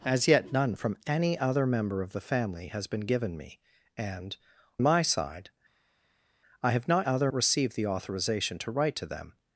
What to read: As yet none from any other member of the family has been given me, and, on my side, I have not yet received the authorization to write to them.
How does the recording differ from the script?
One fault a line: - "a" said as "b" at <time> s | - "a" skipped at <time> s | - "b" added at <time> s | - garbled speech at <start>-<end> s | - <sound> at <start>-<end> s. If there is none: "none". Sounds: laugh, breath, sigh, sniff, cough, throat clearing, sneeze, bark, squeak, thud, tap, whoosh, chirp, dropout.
- "on" skipped at 4.3 s
- "yet" said as "other" at 7.0 s